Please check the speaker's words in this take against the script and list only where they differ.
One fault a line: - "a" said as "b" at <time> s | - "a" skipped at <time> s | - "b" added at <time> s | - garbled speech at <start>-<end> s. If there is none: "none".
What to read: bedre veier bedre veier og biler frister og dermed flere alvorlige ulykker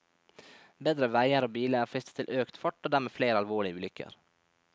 - "bedre veier" skipped at 1.4 s
- "til økt fart" added at 2.2 s